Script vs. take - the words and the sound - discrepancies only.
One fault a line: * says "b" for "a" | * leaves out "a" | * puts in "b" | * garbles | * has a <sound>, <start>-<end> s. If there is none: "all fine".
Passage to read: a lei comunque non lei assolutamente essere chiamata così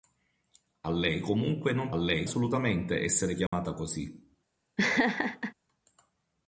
* has a dropout, 3.5-3.5 s
* has a laugh, 4.8-5.5 s